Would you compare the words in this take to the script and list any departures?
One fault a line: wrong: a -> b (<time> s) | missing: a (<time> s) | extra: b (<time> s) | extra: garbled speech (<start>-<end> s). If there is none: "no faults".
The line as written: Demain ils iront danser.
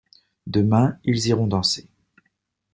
no faults